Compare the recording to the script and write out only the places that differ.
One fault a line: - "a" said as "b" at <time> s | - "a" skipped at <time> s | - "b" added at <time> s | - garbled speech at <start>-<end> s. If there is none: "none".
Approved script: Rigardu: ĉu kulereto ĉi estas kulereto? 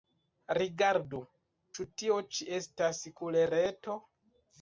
- "kulereto" said as "tio" at 2.0 s